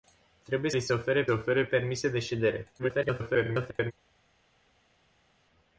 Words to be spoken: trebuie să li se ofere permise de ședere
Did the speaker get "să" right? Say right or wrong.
wrong